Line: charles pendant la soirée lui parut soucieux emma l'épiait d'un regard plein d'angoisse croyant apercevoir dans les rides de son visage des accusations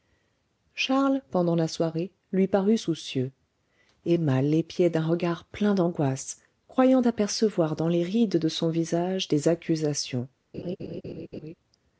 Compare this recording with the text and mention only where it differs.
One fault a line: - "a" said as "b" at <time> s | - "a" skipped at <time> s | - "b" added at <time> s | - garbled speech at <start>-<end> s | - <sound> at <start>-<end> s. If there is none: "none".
- laugh at 10.5-11.5 s